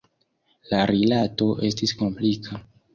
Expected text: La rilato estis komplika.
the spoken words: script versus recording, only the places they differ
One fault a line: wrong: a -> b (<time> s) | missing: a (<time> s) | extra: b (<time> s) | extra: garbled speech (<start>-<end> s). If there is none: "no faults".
no faults